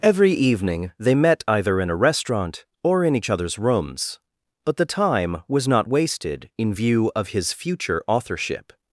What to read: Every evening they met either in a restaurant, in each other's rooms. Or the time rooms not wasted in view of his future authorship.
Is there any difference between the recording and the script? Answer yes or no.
yes